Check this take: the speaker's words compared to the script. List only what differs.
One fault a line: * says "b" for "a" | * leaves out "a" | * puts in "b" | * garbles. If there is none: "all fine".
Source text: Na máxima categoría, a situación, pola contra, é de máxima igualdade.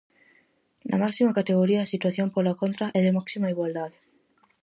all fine